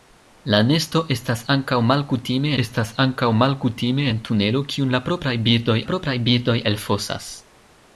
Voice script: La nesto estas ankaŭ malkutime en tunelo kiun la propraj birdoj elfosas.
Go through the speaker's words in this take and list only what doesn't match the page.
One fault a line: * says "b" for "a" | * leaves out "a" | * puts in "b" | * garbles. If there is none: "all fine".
* puts in "estas ankaŭ malkutime"
* puts in "propraj birdoj"